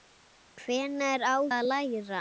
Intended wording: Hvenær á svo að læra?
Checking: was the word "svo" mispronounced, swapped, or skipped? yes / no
yes